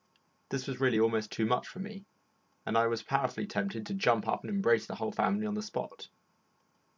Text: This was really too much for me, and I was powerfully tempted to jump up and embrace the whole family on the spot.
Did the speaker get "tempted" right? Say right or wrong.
right